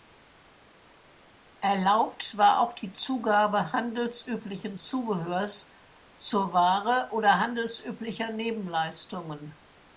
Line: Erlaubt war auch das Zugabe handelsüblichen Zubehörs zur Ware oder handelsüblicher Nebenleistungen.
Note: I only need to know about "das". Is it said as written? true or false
false